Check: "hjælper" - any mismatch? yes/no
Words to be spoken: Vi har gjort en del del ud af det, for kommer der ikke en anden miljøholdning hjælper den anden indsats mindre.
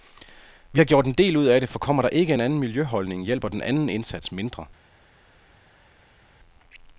no